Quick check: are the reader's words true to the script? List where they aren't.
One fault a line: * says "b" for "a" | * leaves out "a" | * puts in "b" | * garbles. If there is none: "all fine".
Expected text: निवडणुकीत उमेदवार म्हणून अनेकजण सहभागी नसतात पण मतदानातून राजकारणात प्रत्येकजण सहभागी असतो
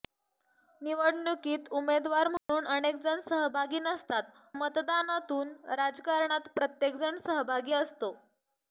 * leaves out "पण"